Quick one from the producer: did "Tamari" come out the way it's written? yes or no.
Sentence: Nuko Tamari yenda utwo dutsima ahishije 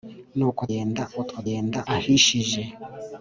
no